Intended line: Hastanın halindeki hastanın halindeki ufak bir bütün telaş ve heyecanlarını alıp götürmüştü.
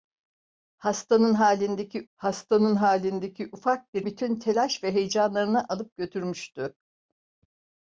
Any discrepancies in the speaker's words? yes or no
no